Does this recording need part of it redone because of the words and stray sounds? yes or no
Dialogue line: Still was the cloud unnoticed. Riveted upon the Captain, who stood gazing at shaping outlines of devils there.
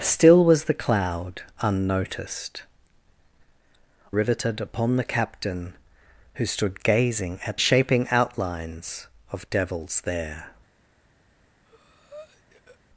yes